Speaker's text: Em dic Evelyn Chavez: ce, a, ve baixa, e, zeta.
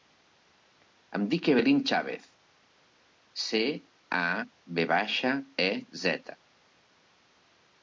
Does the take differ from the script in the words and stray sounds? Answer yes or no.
no